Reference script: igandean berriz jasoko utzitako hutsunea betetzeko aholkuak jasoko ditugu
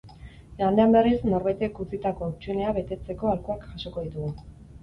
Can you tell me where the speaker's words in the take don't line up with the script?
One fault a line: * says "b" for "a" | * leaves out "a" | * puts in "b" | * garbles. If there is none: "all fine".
* says "norbaitek" for "jasoko"